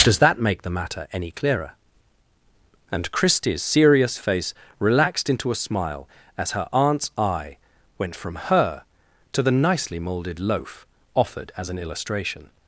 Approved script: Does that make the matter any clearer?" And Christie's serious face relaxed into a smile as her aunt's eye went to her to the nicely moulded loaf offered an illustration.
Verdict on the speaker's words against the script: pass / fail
fail